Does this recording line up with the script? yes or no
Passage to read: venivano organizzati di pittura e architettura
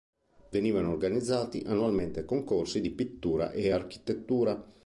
no